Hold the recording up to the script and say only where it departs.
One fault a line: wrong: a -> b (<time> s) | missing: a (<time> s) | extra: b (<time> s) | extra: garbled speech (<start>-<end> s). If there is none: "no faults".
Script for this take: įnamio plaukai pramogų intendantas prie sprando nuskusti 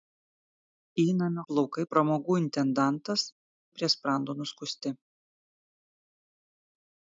no faults